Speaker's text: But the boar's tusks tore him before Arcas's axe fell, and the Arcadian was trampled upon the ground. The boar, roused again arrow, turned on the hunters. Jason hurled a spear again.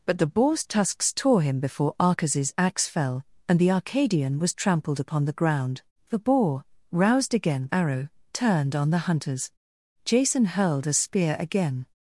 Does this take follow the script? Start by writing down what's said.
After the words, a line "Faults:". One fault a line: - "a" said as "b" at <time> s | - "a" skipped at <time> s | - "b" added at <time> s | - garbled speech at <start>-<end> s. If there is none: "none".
But the boar's tusks tore him before Arcas's axe fell, and the Arcadian was trampled upon the ground. The boar, roused again arrow, turned on the hunters. Jason hurled a spear again.
Faults:
none